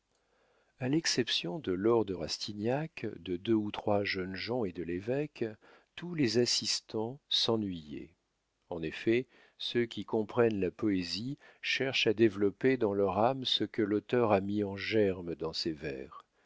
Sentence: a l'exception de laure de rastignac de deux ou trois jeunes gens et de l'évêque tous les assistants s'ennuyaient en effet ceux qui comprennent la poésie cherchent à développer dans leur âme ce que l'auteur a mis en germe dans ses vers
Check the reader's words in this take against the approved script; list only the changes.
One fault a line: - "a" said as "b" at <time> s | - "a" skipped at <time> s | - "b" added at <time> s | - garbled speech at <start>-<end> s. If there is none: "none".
none